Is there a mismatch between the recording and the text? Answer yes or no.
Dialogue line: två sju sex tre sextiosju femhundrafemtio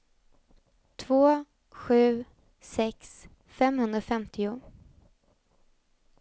yes